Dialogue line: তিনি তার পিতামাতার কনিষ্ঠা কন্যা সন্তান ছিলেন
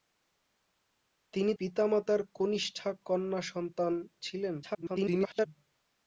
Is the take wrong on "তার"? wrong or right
wrong